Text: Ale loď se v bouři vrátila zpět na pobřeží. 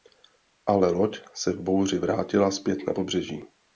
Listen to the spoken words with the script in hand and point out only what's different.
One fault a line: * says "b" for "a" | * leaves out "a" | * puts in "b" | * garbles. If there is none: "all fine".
all fine